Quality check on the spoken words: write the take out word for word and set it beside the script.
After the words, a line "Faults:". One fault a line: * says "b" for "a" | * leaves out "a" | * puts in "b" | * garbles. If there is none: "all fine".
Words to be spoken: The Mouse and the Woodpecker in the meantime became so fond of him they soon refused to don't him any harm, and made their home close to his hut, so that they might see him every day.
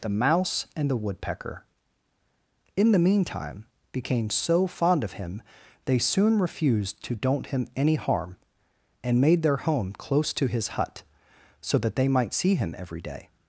The Mouse and the Woodpecker in the meantime became so fond of him they soon refused to don't him any harm, and made their home close to his hut, so that they might see him every day.
Faults:
all fine